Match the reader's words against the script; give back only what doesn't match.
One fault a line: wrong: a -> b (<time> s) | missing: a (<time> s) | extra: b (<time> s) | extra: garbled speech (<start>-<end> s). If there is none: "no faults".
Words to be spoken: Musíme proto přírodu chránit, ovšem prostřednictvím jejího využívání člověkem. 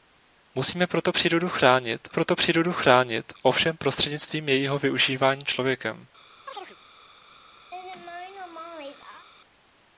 extra: proto přírodu chránit (2.1 s)